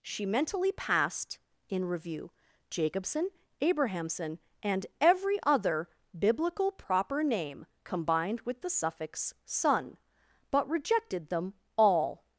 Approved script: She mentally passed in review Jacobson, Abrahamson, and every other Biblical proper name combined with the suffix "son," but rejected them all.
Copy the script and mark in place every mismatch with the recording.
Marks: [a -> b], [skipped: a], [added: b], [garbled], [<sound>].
She mentally passed in review Jacobson, Abrahamson, and every other Biblical proper name combined with the suffix "son," but rejected them all.